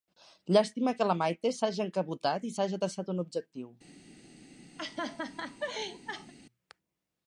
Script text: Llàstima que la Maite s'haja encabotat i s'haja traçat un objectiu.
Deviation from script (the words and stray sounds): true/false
true